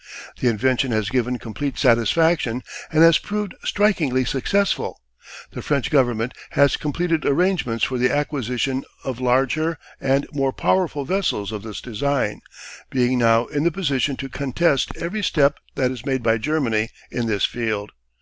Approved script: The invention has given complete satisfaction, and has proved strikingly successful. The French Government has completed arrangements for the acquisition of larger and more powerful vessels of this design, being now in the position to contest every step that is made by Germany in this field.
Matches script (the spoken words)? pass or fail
pass